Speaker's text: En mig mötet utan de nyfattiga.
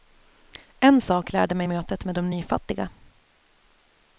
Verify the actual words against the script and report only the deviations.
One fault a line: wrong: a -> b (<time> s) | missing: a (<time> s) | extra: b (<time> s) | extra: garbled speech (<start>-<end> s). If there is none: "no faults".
extra: sak lärde (1.0 s)
wrong: utan -> med (2.0 s)